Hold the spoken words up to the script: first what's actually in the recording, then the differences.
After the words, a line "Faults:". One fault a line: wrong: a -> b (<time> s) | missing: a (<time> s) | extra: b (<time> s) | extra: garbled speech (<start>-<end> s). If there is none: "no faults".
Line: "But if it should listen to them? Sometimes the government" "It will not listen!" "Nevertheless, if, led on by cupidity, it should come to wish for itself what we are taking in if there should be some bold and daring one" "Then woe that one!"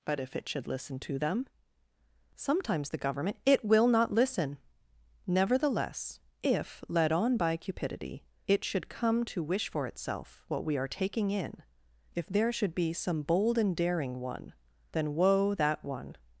"But if it should listen to them? Sometimes the government" "It will not listen!" "Nevertheless, if, led on by cupidity, it should come to wish for itself what we are taking in if there should be some bold and daring one" "Then woe that one!"
Faults:
no faults